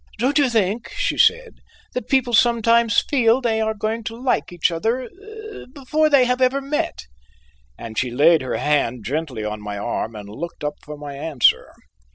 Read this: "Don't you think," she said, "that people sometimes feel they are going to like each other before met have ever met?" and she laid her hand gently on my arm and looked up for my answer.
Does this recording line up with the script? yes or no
no